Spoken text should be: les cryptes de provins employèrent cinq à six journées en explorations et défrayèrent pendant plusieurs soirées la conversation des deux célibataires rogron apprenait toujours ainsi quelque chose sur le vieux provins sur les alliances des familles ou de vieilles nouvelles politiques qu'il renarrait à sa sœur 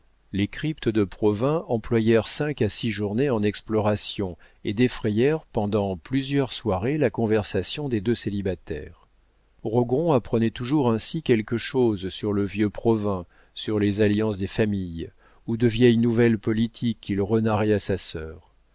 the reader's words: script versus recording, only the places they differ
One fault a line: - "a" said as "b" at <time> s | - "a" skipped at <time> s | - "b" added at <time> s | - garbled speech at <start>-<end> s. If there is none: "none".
none